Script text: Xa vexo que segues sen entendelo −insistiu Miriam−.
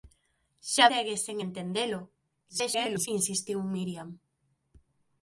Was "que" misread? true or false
true